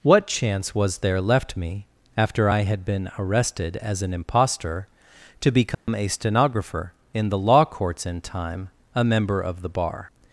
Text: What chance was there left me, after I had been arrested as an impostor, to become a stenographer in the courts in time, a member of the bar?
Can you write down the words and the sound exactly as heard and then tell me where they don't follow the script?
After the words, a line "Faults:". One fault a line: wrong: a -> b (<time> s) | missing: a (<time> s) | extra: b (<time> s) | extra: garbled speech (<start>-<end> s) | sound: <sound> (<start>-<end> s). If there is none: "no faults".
What chance was there left me, after I had been arrested as an impostor, to become a stenographer in the law courts in time, a member of the bar?
Faults:
sound: dropout (5.7-5.9 s)
extra: law (7.4 s)